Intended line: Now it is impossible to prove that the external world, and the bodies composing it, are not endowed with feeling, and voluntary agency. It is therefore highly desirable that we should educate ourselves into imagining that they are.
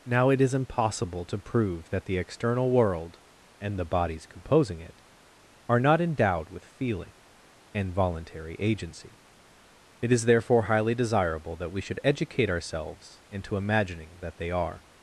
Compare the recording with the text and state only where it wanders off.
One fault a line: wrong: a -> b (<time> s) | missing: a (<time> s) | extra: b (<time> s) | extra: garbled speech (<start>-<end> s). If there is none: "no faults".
no faults